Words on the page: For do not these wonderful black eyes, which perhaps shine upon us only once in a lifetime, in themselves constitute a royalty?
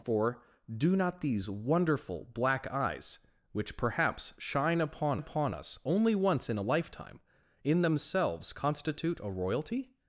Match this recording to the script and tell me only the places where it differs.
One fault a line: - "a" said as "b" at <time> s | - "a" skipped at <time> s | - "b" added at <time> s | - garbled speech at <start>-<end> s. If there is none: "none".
- "upon" added at 5.2 s